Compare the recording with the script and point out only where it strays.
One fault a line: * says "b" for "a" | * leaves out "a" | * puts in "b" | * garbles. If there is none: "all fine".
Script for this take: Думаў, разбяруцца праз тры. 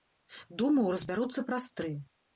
all fine